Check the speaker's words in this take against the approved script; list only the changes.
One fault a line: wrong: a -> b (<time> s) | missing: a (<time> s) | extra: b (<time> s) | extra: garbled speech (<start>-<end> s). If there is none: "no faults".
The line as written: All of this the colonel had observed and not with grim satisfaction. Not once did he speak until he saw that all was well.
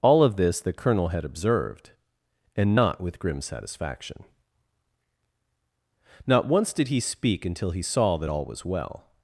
no faults